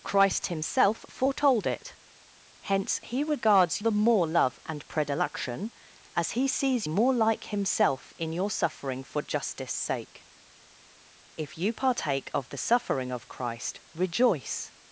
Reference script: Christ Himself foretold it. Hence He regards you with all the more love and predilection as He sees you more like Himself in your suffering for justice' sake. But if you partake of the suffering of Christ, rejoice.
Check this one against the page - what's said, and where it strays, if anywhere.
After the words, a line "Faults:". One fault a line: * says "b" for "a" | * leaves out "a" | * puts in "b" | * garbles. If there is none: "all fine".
Christ Himself foretold it. Hence He regards the more love and predilection as He sees more like Himself in your suffering for justice' sake. If you partake of the suffering of Christ, rejoice.
Faults:
* leaves out "you with all"
* leaves out "you"
* leaves out "But"